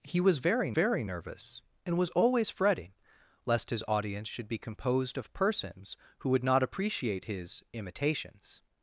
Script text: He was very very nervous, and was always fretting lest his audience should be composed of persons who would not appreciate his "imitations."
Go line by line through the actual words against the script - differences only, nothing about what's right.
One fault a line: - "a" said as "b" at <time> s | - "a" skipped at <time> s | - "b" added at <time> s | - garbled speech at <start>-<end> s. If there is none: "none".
none